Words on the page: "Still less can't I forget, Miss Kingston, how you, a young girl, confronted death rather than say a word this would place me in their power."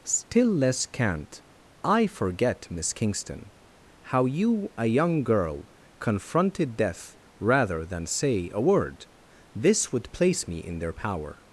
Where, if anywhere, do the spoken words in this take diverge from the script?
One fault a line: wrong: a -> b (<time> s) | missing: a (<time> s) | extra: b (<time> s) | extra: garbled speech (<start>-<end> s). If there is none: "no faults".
no faults